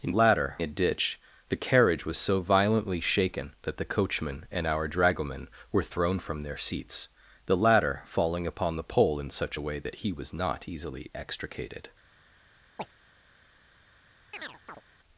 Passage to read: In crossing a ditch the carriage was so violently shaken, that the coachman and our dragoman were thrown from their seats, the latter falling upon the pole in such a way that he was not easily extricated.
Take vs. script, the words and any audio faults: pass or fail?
fail